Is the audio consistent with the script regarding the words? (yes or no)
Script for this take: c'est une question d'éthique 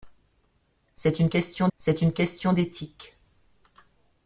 no